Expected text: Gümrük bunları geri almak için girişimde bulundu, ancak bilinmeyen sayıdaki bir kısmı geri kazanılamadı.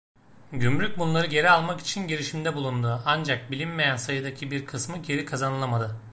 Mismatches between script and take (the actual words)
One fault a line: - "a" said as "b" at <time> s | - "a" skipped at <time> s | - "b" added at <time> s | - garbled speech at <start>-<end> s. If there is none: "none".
none